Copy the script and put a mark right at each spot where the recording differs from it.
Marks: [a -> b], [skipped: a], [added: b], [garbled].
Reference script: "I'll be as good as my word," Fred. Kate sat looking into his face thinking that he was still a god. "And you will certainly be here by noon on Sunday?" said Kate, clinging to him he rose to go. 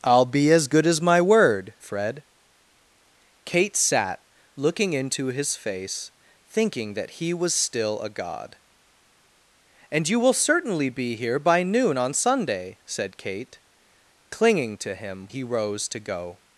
"I'll be as good as my word," Fred. Kate sat looking into his face thinking that he was still a god. "And you will certainly be here by noon on Sunday?" said Kate, clinging to him he rose to go.